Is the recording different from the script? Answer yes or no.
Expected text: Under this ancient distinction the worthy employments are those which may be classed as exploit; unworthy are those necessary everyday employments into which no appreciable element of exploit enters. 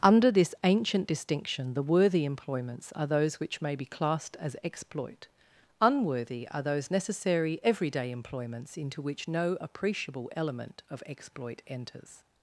no